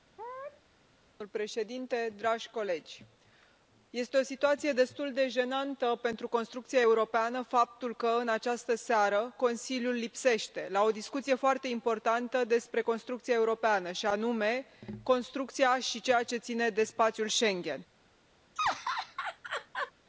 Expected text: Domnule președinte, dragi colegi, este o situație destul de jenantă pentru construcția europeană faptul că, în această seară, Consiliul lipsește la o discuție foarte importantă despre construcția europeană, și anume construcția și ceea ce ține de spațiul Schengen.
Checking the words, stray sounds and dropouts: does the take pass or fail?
fail